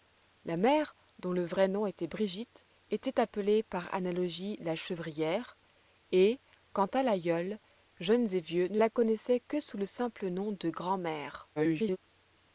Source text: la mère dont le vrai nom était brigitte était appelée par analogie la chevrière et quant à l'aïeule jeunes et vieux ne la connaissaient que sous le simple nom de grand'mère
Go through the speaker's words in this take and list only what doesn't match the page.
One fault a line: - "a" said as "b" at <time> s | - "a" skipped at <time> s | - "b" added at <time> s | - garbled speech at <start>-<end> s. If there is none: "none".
- garbled speech at 11.6-12.0 s